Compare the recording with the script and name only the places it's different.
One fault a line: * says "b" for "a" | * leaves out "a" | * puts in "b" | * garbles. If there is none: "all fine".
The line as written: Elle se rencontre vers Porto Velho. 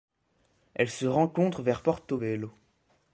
all fine